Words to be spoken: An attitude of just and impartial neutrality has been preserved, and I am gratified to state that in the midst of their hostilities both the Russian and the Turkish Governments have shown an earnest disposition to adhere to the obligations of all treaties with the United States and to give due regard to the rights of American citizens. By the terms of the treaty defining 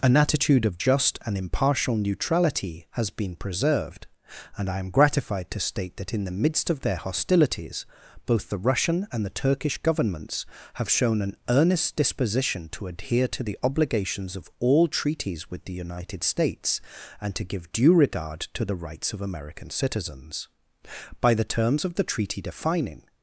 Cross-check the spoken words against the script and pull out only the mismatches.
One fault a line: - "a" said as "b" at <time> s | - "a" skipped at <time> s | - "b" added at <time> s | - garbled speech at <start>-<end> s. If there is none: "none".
none